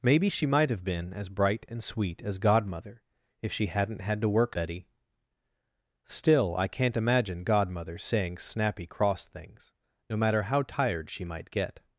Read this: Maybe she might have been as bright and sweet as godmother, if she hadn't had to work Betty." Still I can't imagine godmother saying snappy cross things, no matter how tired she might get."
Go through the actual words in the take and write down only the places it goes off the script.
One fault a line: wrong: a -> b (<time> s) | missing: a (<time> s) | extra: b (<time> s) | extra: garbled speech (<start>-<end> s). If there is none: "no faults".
no faults